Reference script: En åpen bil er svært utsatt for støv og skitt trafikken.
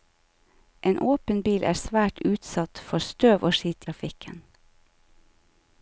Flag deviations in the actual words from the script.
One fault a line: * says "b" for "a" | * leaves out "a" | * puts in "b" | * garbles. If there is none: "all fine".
all fine